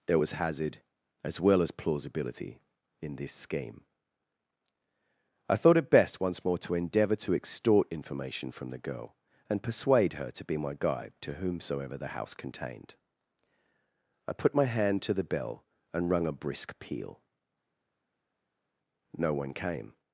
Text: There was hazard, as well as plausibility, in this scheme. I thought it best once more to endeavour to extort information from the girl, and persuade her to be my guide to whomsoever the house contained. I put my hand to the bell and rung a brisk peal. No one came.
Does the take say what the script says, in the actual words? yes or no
yes